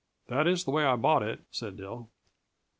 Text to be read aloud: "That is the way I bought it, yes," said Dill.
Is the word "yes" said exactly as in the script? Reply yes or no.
no